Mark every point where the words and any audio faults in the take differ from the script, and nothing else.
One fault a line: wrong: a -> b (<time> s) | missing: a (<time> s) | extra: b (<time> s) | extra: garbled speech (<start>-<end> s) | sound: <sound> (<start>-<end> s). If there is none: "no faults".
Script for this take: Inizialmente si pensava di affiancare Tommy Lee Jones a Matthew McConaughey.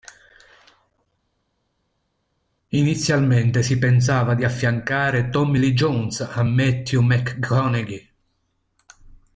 no faults